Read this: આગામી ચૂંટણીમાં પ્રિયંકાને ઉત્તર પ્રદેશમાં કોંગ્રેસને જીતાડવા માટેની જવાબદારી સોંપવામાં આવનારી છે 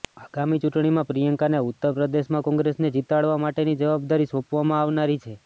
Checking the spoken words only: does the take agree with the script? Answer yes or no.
yes